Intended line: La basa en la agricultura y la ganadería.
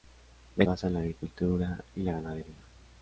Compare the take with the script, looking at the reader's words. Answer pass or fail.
pass